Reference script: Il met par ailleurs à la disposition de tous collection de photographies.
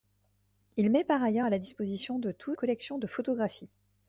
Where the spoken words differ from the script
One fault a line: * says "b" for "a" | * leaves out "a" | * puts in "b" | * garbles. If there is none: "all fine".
all fine